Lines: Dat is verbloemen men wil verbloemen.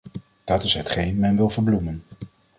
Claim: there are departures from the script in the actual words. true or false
true